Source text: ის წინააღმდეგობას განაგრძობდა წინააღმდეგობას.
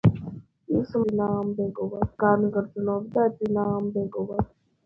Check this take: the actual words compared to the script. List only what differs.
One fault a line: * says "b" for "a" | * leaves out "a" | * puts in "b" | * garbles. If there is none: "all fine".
all fine